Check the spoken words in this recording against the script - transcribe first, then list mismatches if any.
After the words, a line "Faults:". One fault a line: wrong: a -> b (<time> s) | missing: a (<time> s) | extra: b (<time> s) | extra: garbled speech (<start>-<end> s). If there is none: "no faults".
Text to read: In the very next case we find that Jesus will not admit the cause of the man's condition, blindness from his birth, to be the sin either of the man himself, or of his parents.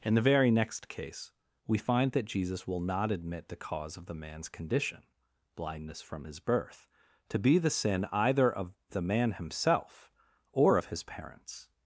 In the very next case we find that Jesus will not admit the cause of the man's condition, blindness from his birth, to be the sin either of the man himself, or of his parents.
Faults:
no faults